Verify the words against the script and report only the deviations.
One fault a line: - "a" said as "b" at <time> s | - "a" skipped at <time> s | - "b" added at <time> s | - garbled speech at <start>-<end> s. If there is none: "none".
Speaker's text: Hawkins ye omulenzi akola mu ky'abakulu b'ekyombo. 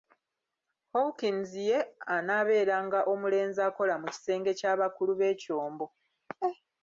- "anaabeeranga" added at 2.1 s
- "kisenge" added at 4.1 s